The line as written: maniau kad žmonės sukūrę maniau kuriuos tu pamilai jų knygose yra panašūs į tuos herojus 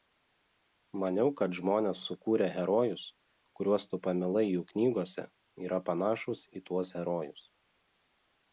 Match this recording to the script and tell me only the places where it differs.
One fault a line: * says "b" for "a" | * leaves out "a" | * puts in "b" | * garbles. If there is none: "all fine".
* says "herojus" for "maniau"